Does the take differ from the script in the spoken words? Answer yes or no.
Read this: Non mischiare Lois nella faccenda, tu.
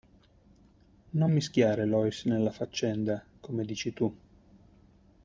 yes